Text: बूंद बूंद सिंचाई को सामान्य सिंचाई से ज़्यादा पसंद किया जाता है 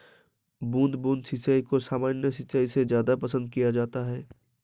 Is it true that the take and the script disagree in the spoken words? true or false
false